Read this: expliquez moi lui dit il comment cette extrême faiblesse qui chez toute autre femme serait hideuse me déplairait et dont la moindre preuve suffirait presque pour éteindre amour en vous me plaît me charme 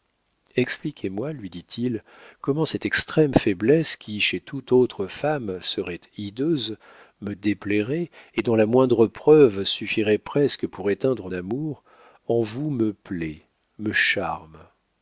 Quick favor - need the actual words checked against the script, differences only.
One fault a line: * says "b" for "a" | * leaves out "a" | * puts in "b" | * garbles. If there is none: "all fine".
all fine